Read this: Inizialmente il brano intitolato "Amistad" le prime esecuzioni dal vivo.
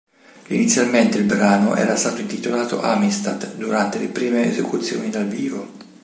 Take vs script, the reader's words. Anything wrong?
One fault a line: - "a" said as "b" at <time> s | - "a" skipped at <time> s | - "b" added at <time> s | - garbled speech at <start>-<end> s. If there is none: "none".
- "era stato" added at 1.7 s
- "durante" added at 3.6 s